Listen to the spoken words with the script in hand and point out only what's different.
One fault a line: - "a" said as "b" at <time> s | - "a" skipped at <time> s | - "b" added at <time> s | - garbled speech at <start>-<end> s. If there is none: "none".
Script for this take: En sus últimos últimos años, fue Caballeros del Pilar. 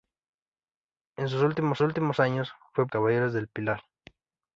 none